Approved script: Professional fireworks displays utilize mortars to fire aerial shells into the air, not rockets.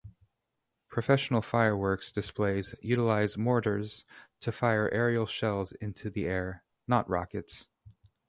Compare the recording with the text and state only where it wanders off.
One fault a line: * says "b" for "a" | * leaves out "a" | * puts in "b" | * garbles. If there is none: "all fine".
all fine